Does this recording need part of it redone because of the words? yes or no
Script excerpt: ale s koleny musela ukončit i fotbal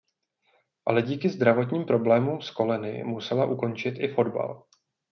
yes